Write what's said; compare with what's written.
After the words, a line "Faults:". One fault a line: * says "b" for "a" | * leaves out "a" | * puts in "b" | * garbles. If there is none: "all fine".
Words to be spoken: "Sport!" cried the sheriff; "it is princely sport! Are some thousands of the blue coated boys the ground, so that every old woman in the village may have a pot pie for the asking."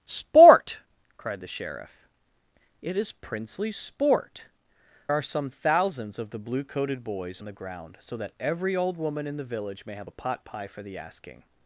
"Sport!" cried the sheriff; "it is princely sport! Are some thousands of the blue coated boys the ground, so that every old woman in the village may have a pot pie for the asking."
Faults:
all fine